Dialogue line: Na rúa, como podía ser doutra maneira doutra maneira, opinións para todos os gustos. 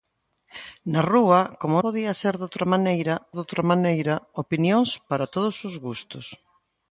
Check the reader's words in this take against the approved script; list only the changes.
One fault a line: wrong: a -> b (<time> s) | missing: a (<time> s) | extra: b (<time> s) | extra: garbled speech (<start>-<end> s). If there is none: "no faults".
no faults